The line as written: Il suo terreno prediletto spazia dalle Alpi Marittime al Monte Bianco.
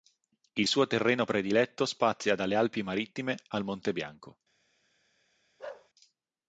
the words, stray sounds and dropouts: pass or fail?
fail